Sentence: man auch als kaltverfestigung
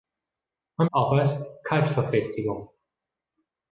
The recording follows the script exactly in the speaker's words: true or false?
true